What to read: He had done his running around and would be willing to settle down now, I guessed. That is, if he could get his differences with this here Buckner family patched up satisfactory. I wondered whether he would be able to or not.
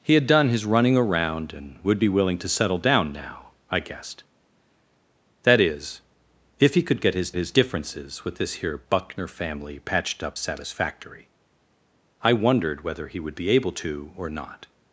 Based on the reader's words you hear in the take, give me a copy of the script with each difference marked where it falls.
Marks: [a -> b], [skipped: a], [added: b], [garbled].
He had done his running around and would be willing to settle down now, I guessed. That is, if he could get his [added: his] differences with this here Buckner family patched up satisfactory. I wondered whether he would be able to or not.